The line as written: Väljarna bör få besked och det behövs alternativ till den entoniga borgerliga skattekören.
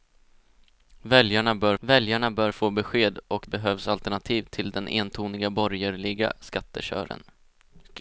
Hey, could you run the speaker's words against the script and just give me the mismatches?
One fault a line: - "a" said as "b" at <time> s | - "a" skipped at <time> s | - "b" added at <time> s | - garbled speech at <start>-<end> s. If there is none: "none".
- "väljarna bör" added at 1.8 s
- "det" skipped at 3.5 s